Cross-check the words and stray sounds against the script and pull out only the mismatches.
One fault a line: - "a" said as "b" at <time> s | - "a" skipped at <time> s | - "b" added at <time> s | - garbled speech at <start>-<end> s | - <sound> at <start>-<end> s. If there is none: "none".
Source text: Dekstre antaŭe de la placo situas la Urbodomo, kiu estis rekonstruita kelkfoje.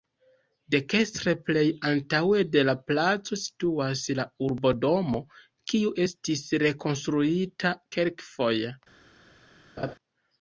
- "plej" added at 1.5 s
- laugh at 9.8-9.9 s